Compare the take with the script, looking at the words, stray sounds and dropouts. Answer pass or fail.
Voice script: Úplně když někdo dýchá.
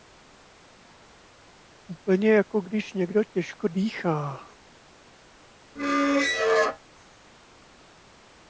fail